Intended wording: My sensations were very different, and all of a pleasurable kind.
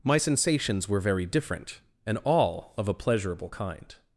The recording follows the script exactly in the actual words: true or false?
true